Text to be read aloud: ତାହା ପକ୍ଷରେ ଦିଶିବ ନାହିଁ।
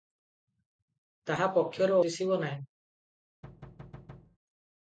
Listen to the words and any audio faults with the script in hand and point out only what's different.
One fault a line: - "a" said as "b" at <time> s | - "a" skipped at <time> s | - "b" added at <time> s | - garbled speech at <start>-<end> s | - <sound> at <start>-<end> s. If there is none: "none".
- thud at 3.4-4.4 s